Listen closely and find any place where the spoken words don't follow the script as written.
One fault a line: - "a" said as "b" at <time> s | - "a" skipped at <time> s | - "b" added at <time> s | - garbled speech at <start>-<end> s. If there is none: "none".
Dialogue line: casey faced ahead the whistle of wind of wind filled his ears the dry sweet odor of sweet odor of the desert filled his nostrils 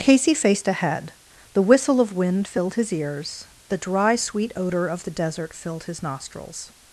- "of wind" skipped at 2.5 s
- "sweet odor of" skipped at 5.0 s